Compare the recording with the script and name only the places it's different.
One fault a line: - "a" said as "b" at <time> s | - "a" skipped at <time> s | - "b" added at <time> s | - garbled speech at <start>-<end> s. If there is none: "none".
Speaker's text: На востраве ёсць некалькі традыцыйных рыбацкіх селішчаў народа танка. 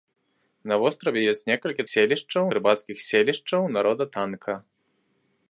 - "традыцыйных" said as "селішчаў" at 1.9 s